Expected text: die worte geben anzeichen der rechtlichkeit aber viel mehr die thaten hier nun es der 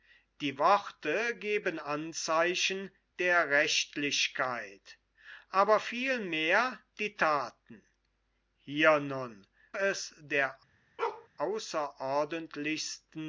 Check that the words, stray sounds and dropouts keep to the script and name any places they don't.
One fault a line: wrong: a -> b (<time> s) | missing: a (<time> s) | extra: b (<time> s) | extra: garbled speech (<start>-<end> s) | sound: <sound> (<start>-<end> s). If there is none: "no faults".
sound: bark (11.0-11.3 s)